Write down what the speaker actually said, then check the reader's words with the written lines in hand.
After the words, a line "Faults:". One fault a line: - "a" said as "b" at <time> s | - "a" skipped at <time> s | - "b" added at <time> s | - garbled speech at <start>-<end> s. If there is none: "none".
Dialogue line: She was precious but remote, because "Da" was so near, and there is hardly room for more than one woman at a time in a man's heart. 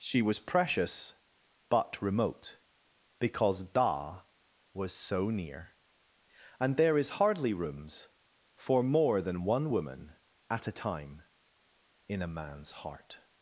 She was precious but remote, because "Da" was so near, and there is hardly rooms for more than one woman at a time in a man's heart.
Faults:
- "room" said as "rooms" at 7.5 s